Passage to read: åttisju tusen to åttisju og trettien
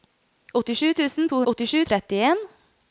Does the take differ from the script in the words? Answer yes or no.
no